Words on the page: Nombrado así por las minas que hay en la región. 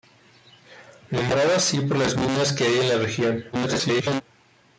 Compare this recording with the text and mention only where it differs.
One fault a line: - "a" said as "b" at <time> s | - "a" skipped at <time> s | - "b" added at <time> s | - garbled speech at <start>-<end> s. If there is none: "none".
- garbled speech at 3.5-4.2 s